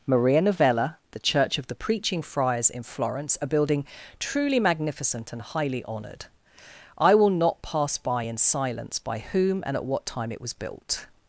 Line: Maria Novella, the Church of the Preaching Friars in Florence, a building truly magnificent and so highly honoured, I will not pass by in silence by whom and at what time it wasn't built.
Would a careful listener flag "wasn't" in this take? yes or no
yes